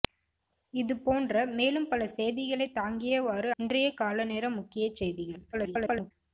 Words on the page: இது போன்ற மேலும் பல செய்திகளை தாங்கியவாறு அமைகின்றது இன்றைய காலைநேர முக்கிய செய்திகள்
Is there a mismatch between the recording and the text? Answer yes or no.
yes